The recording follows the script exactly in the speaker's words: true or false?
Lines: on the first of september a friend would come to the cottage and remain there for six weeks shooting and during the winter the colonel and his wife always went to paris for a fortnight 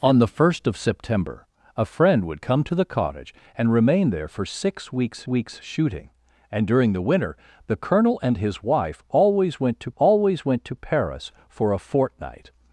false